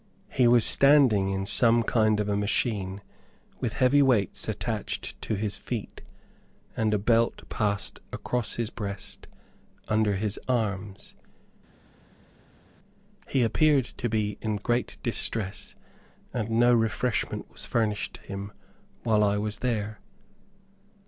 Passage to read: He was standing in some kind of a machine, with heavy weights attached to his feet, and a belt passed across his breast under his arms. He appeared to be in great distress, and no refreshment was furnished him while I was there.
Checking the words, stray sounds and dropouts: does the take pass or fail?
pass